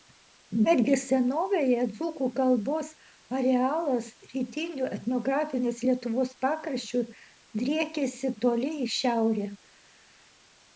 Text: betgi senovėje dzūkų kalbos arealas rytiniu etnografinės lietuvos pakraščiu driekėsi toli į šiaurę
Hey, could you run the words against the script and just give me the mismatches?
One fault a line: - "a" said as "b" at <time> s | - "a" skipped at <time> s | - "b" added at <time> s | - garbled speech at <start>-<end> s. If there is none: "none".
none